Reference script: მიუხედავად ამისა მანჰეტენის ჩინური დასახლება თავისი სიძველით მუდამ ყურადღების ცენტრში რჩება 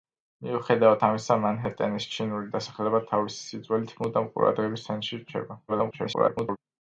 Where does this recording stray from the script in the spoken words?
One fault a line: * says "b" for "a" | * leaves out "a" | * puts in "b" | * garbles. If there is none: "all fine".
* garbles